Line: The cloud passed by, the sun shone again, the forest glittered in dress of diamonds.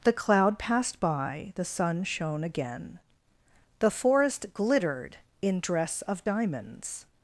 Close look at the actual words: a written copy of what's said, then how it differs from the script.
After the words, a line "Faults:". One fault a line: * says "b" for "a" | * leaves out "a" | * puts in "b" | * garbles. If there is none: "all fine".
The cloud passed by, the sun shone again, the forest glittered in dress of diamonds.
Faults:
all fine